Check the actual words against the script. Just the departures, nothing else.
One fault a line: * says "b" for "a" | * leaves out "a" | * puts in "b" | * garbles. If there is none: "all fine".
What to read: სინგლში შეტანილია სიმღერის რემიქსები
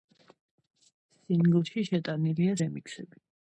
* leaves out "სიმღერის"